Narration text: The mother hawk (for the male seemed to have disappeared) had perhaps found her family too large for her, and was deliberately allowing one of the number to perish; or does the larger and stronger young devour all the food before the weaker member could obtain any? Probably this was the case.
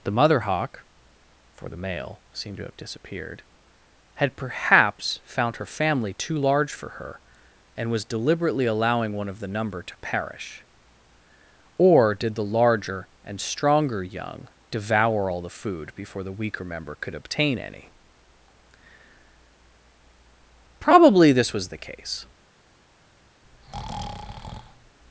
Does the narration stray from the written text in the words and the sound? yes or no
yes